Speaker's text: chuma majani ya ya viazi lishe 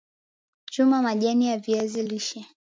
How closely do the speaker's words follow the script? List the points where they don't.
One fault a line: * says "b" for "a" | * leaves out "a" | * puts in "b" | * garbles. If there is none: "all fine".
* leaves out "ya"